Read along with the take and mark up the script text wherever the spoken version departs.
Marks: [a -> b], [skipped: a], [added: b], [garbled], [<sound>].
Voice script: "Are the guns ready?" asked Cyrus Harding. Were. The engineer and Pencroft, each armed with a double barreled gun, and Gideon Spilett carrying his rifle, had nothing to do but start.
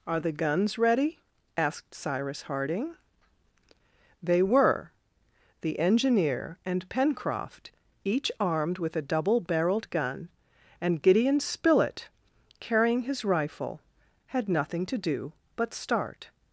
"Are the guns ready?" asked Cyrus Harding. [added: They] Were. The engineer and Pencroft, each armed with a double barreled gun, and Gideon Spilett carrying his rifle, had nothing to do but start.